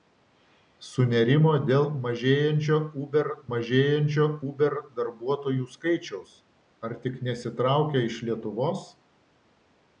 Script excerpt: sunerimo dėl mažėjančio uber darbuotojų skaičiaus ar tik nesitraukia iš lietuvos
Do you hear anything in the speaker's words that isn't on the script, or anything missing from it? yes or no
yes